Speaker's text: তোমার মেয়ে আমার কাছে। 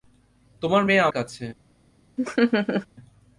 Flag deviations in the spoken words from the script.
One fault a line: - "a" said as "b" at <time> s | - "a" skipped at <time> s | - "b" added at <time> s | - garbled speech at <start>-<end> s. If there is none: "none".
- "আমার" skipped at 1.1 s